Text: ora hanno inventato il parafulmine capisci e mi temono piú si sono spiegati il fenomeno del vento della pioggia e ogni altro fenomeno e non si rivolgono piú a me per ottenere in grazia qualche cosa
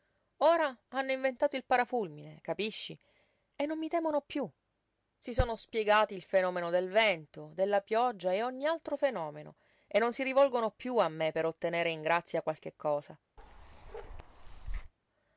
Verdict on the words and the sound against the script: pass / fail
fail